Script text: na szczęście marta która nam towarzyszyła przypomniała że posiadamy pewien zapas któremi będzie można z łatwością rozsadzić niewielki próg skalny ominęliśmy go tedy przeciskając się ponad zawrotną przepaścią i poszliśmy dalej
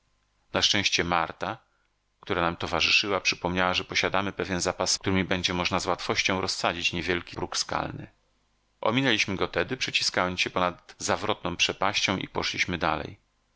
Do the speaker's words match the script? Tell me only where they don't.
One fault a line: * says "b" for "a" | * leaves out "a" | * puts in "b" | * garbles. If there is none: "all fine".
all fine